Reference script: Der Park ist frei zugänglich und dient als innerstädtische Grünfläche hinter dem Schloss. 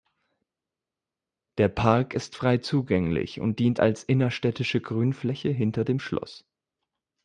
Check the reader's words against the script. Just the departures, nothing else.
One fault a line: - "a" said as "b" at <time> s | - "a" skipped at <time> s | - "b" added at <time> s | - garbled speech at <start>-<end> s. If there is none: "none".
none